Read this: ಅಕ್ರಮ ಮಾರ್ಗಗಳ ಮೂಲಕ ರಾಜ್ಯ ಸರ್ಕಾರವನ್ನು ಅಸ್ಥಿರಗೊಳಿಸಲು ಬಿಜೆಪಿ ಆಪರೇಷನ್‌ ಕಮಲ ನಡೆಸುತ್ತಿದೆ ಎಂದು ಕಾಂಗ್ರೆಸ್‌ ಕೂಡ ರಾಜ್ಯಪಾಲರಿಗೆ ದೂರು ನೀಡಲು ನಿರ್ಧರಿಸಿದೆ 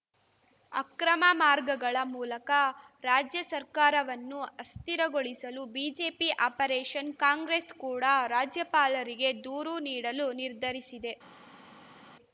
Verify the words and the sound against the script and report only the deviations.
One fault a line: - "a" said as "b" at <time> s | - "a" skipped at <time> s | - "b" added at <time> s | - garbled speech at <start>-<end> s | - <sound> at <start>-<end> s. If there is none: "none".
- "ಕಮಲ ನಡೆಸುತ್ತಿದೆ ಎಂದು" skipped at 7.1 s